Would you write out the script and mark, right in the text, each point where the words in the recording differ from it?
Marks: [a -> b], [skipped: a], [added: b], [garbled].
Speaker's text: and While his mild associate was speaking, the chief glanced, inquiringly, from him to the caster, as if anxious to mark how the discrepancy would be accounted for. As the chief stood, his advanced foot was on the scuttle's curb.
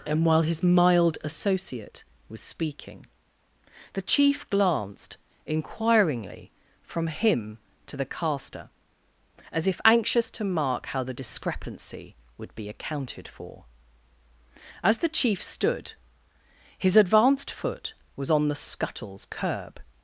and While his mild associate was speaking, the chief glanced, inquiringly, from him to the caster, as if anxious to mark how the discrepancy would be accounted for. As the chief stood, his advanced foot was on the scuttle's curb.